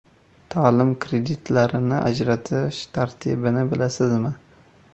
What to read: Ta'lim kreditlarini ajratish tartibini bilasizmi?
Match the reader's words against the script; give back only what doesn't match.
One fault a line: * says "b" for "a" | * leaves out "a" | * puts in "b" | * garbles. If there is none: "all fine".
all fine